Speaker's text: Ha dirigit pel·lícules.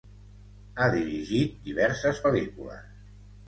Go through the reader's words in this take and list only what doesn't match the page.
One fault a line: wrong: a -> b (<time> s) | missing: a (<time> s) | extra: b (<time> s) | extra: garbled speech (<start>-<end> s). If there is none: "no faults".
extra: diverses (1.7 s)